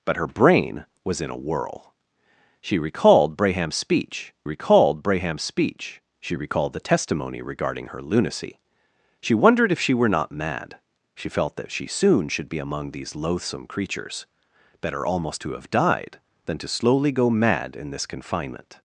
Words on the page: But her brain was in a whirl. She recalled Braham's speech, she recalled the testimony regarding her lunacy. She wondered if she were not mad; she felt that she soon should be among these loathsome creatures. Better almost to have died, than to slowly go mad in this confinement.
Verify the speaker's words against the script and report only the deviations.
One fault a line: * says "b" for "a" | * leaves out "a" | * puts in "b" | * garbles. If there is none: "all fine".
* puts in "recalled Braham's speech"